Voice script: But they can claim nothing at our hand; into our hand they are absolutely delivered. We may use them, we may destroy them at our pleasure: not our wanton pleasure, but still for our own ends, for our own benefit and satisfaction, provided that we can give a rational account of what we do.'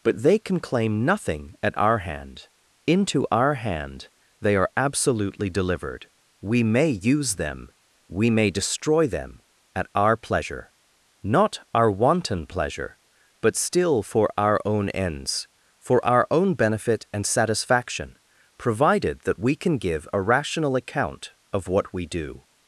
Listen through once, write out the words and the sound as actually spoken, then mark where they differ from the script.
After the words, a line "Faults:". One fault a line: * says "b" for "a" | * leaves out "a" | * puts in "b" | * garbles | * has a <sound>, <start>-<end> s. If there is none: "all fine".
But they can claim nothing at our hand; into our hand they are absolutely delivered. We may use them, we may destroy them at our pleasure: not our wanton pleasure, but still for our own ends, for our own benefit and satisfaction, provided that we can give a rational account of what we do.'
Faults:
all fine